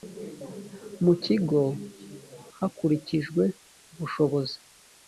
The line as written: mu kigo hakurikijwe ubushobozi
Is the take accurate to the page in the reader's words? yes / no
yes